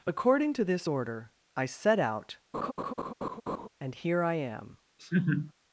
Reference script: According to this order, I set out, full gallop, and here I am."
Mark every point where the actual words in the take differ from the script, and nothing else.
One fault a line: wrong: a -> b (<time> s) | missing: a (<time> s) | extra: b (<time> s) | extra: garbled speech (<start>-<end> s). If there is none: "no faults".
missing: full gallop (2.4 s)